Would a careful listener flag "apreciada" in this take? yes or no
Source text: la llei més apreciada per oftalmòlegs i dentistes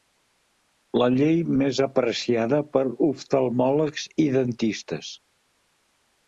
no